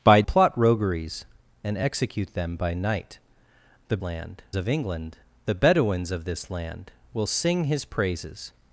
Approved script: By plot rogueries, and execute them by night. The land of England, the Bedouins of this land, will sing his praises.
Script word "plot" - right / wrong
right